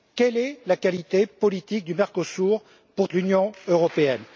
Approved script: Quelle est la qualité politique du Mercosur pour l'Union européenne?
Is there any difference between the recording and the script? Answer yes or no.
no